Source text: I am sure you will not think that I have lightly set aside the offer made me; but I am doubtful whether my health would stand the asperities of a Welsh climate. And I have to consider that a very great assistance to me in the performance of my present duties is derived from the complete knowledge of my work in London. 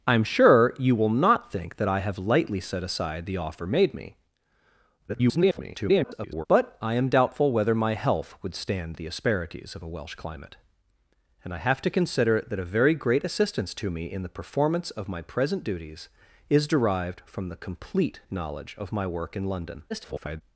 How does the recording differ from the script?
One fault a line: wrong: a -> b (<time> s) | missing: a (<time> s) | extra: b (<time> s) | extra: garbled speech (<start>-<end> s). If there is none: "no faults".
extra: garbled speech (5.1-6.5 s)
extra: garbled speech (19.9-20.4 s)